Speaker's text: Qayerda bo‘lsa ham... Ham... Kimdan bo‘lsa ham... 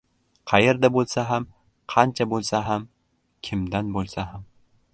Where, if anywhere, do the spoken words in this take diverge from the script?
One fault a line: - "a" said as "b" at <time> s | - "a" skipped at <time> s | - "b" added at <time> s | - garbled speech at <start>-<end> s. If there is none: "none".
- "Qancha bo‘lsa" added at 1.9 s